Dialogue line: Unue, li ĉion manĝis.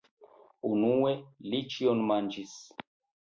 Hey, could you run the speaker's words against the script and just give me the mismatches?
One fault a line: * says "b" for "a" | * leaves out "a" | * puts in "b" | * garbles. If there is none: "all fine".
all fine